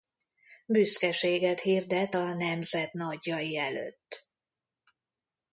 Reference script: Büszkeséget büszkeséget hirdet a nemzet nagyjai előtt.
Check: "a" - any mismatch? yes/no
no